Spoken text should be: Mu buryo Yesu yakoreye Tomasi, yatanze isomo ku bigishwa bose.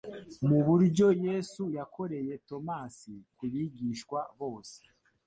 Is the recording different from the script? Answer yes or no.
yes